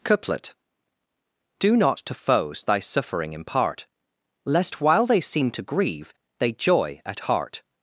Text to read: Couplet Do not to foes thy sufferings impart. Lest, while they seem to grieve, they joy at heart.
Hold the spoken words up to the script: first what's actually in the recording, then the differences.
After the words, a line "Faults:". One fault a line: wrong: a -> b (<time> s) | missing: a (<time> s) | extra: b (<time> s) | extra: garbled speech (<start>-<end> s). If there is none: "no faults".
Couplet Do not to foes thy suffering impart. Lest, while they seem to grieve, they joy at heart.
Faults:
wrong: sufferings -> suffering (2.8 s)